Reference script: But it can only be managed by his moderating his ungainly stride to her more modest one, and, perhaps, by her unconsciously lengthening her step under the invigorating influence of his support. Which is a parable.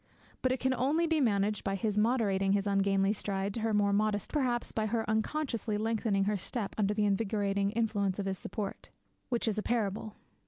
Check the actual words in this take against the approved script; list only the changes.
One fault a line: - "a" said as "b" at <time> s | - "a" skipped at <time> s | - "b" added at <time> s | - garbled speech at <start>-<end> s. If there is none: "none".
- "one and" skipped at 4.3 s